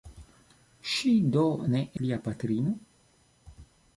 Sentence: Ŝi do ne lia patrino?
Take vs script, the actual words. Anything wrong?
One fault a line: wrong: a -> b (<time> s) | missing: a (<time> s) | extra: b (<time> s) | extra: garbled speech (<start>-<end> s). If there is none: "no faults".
no faults